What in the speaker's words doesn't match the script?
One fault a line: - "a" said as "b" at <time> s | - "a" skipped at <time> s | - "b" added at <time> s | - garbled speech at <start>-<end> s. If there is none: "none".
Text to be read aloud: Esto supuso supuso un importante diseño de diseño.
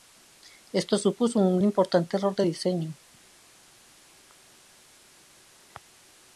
- "supuso" skipped at 1.4 s
- "diseño" said as "error" at 2.1 s